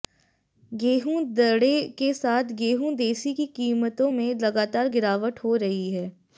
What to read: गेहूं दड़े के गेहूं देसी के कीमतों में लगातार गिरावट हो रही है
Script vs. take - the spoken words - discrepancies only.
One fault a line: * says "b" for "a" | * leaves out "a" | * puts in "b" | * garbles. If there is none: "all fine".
* puts in "साथ"
* says "की" for "के"